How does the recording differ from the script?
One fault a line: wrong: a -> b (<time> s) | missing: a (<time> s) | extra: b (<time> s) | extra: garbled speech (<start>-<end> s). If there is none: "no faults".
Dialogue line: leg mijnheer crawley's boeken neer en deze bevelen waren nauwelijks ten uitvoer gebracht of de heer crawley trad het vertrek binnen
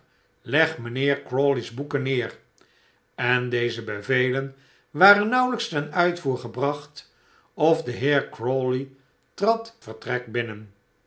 missing: het (9.8 s)